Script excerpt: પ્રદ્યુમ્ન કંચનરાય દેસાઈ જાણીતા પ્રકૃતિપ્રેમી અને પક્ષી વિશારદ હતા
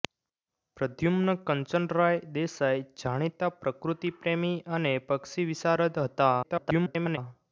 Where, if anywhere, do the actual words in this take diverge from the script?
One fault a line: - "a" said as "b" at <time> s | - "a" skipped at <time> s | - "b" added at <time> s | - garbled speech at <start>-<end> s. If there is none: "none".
- garbled speech at 6.4-7.2 s